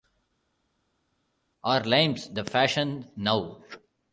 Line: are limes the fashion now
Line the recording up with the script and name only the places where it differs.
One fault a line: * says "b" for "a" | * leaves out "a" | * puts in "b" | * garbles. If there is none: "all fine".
all fine